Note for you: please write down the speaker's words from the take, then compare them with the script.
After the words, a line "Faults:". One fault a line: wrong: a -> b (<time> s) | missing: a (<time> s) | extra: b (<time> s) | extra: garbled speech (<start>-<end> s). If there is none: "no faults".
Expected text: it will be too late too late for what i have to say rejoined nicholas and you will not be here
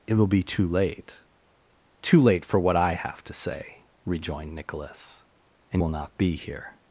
it will be too late too late for what i have to say rejoined nicholas and will not be here
Faults:
missing: you (5.8 s)